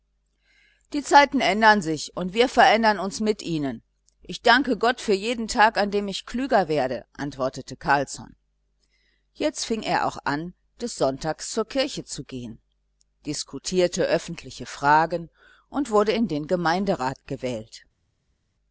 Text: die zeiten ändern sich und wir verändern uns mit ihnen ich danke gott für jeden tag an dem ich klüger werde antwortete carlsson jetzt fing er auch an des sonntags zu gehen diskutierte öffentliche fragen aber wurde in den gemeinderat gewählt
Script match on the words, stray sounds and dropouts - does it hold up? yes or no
no